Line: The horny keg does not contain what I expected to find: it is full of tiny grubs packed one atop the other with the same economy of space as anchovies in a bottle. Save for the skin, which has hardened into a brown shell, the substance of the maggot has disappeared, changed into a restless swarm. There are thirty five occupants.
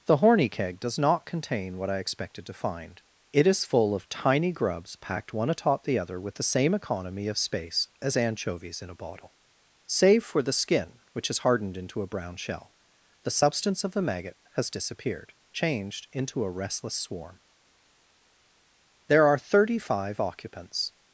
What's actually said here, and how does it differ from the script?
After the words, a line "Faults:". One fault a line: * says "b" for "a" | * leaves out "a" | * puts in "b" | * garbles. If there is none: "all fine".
The horny keg does not contain what I expected to find: it is full of tiny grubs packed one atop the other with the same economy of space as anchovies in a bottle. Save for the skin, which has hardened into a brown shell, the substance of the maggot has disappeared, changed into a restless swarm. There are thirty five occupants.
Faults:
all fine